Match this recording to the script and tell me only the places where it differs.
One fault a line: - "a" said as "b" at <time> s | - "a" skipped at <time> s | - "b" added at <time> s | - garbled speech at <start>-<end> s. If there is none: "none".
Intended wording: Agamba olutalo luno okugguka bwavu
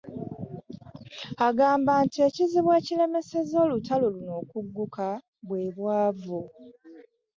- "nti ekizibu ekiremesezza" added at 2.0 s
- "bwe" added at 5.5 s